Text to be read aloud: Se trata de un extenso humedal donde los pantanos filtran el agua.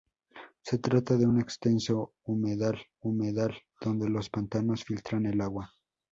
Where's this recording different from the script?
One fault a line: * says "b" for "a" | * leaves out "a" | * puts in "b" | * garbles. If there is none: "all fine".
* puts in "humedal"